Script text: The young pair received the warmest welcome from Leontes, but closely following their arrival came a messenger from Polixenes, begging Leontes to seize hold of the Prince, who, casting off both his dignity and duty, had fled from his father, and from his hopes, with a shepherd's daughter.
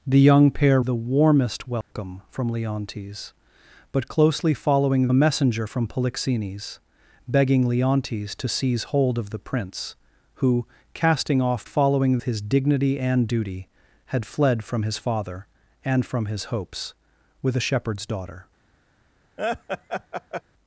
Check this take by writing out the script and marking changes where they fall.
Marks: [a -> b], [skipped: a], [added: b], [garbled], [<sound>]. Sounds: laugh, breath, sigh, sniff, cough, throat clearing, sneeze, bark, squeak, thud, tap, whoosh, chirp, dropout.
The young pair [skipped: received] the warmest welcome [dropout] from Leontes, but closely following [skipped: their arrival came] a messenger from Polixenes, begging Leontes to seize hold of the Prince, who, casting off [both -> following] his dignity and duty, had fled from his father, and from his hopes, with a shepherd's daughter. [laugh]